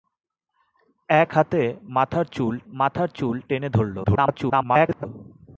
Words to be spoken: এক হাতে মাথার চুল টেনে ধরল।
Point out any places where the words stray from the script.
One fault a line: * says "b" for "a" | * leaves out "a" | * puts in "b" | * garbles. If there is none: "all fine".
* puts in "মাথার চুল"
* garbles